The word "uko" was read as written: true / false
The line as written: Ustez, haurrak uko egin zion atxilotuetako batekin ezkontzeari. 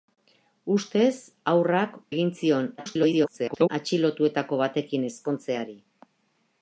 false